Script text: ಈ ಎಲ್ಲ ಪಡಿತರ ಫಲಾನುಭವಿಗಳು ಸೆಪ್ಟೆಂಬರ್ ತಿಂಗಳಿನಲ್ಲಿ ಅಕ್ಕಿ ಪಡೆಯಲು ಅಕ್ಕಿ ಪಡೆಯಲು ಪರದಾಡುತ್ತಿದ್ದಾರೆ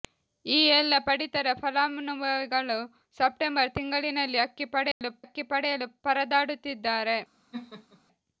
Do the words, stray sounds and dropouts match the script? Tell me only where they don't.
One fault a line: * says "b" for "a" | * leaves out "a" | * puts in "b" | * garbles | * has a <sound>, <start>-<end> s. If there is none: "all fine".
* has a dropout, 4.9-5.0 s
* has a laugh, 7.5-8.0 s